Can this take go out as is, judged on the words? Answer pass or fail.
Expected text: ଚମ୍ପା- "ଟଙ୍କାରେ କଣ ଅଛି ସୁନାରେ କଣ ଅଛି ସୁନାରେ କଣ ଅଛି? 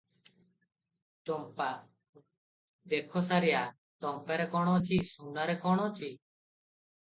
fail